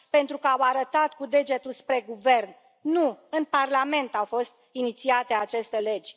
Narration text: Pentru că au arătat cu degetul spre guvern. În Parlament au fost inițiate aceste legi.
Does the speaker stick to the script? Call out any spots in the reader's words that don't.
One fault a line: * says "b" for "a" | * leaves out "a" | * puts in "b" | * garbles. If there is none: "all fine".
* puts in "Nu"